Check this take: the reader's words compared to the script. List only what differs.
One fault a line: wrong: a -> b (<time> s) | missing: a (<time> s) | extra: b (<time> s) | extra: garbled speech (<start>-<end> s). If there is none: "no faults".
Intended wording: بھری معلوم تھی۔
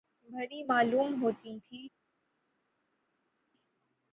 extra: ہوتی (1.2 s)